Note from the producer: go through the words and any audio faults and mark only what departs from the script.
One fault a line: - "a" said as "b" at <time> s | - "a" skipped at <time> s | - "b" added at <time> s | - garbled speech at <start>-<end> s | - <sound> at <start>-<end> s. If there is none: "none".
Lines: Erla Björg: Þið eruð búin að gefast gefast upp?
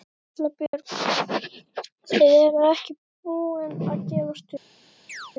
- dropout at 0.7-0.7 s
- "ekki" added at 2.7 s
- "gefast" skipped at 4.4 s
- chirp at 5.1-5.3 s